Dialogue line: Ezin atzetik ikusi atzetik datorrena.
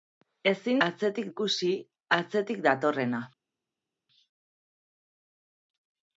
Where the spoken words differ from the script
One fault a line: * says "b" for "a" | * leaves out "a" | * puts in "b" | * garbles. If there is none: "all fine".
all fine